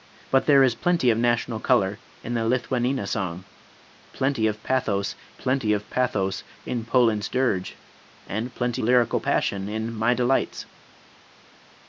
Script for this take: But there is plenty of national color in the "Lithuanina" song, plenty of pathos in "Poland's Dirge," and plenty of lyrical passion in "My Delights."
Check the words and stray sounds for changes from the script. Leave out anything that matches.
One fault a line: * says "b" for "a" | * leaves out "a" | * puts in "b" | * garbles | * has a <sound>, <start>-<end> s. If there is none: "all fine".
* puts in "plenty of pathos"
* leaves out "of"